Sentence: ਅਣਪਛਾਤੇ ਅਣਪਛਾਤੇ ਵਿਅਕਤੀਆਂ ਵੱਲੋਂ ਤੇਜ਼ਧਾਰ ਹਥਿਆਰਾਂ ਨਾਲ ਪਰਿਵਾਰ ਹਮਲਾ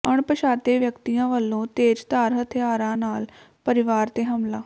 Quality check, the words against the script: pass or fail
fail